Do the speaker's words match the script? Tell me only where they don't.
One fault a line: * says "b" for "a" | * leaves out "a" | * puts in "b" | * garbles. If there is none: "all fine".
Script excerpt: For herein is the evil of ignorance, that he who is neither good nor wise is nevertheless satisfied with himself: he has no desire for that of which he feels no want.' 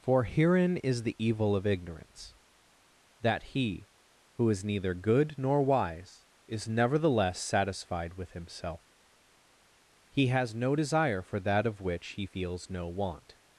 all fine